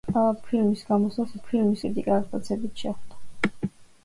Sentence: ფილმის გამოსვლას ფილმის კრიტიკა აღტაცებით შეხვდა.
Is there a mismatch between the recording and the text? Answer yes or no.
no